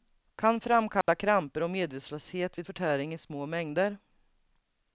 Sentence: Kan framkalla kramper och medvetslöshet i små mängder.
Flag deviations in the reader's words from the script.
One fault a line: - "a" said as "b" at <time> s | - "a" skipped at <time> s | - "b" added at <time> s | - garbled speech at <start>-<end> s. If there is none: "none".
- "vid förtäring" added at 2.6 s